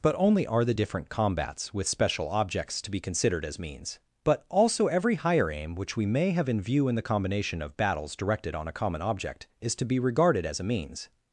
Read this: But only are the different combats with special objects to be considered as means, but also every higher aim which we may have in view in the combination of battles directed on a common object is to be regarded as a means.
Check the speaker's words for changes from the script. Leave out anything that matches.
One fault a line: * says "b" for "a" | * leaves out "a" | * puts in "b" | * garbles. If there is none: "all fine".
all fine